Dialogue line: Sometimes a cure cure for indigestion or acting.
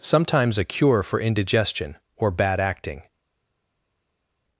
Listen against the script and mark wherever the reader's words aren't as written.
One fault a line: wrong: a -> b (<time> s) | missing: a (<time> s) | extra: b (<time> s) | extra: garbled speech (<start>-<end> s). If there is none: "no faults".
missing: cure (1.0 s)
extra: bad (2.3 s)